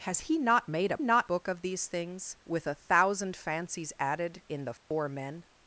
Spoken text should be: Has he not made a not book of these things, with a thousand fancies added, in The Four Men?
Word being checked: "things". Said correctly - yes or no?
yes